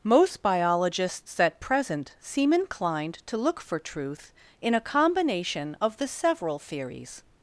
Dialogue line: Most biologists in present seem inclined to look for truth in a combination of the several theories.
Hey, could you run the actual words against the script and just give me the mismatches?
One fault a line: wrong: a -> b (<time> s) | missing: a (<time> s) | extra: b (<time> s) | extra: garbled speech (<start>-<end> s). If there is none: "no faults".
wrong: in -> at (1.4 s)